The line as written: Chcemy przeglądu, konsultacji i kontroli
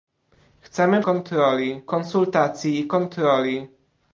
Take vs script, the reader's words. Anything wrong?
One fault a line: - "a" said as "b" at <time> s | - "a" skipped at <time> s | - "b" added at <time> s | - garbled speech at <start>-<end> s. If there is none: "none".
- "przeglądu" said as "kontroli" at 1.0 s